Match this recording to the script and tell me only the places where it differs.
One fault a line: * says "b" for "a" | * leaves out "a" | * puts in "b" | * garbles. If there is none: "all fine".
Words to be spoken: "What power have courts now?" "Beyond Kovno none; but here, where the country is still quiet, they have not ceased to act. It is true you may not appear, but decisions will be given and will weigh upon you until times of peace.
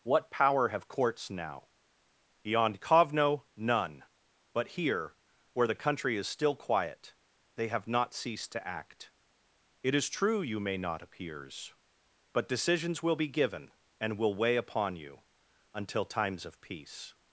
* says "appears" for "appear"